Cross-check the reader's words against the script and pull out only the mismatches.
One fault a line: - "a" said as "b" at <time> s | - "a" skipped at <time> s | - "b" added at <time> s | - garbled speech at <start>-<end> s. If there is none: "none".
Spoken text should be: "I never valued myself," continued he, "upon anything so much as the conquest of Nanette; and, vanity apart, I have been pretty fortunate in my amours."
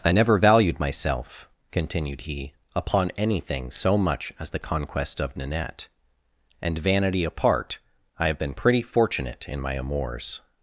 none